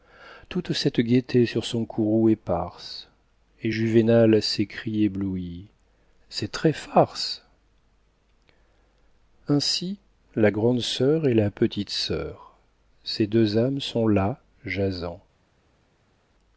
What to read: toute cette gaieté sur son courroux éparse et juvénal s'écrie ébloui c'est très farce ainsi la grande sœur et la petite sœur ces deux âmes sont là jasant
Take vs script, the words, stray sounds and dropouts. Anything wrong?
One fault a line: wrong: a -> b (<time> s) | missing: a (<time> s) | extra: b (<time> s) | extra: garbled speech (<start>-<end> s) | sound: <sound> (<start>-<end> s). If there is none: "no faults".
no faults